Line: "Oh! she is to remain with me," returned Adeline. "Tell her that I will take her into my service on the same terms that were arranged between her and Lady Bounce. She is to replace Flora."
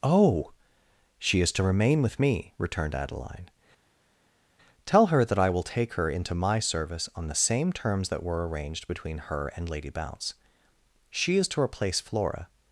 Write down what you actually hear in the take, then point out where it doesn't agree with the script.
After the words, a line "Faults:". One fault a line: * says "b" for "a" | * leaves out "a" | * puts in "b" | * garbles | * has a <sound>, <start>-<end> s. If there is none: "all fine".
"Oh! she is to remain with me," returned Adeline. "Tell her that I will take her into my service on the same terms that were arranged between her and Lady Bounce. She is to replace Flora."
Faults:
all fine